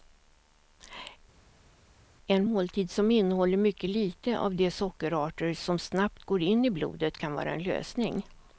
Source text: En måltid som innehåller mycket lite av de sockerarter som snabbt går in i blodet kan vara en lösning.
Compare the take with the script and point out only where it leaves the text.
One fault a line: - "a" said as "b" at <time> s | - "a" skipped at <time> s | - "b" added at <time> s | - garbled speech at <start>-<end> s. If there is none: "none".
none